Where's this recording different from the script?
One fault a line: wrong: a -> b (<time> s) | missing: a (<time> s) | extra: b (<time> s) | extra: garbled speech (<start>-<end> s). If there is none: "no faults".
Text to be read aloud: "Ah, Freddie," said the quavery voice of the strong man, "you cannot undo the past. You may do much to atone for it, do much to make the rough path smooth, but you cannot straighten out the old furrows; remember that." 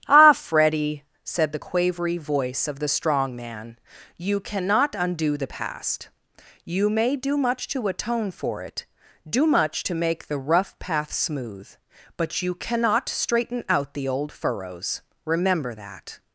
no faults